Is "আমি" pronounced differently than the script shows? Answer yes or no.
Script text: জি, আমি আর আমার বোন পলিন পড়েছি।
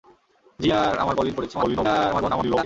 yes